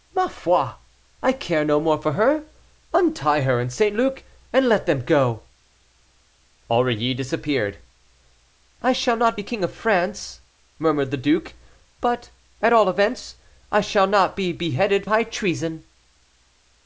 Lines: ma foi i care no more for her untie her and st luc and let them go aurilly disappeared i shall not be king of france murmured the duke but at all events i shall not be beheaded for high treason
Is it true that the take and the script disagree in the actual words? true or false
true